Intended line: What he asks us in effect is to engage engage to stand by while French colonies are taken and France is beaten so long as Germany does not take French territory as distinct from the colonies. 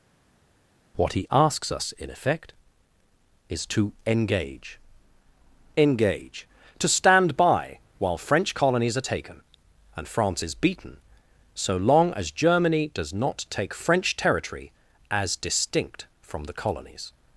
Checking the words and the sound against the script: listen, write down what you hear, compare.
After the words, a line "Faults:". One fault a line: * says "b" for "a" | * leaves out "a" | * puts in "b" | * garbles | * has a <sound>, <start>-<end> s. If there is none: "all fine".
What he asks us in effect is to engage engage to stand by while French colonies are taken and France is beaten so long as Germany does not take French territory as distinct from the colonies.
Faults:
all fine